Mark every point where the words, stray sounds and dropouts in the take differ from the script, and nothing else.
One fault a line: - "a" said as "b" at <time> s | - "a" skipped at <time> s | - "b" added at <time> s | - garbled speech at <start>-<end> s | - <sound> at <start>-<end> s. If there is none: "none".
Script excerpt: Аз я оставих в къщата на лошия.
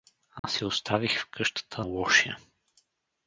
- dropout at 0.4-0.4 s
- "на" skipped at 1.9 s